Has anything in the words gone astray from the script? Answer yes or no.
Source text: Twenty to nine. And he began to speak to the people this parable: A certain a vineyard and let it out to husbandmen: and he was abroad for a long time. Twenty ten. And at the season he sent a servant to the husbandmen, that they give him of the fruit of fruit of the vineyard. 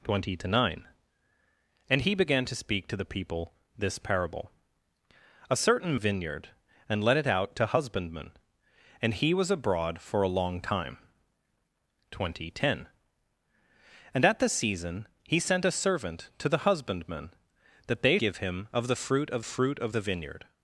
no